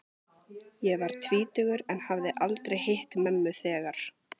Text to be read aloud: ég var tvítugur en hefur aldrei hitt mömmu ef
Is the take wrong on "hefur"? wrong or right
wrong